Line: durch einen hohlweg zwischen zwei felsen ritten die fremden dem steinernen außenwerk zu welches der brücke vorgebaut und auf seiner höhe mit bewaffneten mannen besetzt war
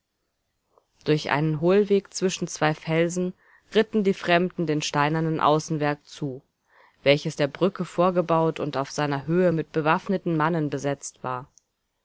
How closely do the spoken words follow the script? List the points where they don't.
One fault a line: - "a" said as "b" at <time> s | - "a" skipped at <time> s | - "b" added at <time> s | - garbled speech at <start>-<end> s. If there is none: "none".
none